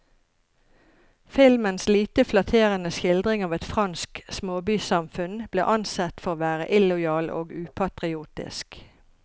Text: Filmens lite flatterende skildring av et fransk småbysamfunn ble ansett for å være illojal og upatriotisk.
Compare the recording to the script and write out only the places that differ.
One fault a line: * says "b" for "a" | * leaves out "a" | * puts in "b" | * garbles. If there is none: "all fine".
all fine